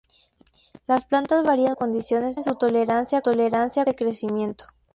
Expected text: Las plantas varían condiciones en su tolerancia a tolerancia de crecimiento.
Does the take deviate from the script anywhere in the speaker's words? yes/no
no